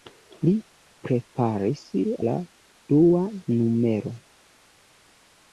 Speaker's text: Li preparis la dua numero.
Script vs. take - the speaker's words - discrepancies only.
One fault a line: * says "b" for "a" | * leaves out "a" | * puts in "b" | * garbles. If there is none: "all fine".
all fine